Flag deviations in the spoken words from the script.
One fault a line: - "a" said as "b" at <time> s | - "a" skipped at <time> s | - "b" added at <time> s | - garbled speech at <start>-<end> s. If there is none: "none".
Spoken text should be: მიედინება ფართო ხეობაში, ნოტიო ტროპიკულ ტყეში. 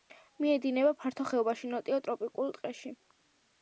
none